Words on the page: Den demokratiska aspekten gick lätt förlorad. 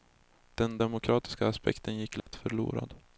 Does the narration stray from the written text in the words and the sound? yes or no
yes